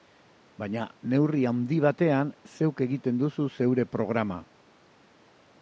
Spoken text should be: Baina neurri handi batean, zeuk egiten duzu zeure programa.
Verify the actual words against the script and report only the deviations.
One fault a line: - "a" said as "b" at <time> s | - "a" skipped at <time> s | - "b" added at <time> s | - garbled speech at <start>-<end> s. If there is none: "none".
none